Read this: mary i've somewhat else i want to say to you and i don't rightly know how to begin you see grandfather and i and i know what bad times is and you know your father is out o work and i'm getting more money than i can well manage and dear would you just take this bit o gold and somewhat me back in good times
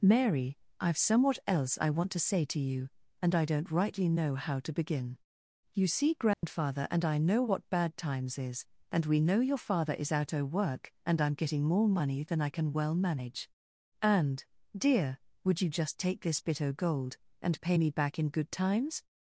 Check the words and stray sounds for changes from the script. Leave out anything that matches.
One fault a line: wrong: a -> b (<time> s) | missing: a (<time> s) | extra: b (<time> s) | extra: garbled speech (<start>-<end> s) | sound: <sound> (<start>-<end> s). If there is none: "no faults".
sound: dropout (6.3-6.4 s)
missing: and i (7.2 s)
wrong: you -> we (9.1 s)
wrong: somewhat -> pay (17.6 s)